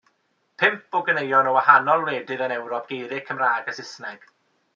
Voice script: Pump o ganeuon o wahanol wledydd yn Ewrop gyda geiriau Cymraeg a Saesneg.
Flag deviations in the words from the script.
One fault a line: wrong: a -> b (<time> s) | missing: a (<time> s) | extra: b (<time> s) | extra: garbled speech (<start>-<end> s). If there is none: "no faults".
missing: gyda (2.9 s)